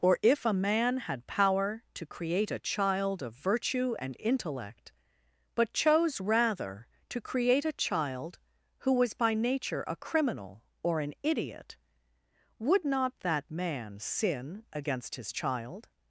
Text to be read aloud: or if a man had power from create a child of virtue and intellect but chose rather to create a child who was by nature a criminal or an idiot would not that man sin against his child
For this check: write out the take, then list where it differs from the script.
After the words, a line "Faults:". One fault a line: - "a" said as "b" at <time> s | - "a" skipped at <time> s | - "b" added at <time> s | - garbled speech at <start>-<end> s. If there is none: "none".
or if a man had power to create a child of virtue and intellect but chose rather to create a child who was by nature a criminal or an idiot would not that man sin against his child
Faults:
- "from" said as "to" at 1.9 s